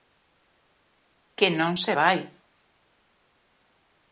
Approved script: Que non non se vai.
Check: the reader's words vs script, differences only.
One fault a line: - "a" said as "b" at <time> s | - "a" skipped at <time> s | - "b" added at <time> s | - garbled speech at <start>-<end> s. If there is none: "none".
- "non" skipped at 1.7 s